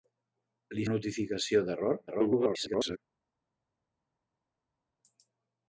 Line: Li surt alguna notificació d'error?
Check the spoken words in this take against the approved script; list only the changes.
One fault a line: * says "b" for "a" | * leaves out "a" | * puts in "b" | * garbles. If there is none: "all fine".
* leaves out "surt alguna"
* garbles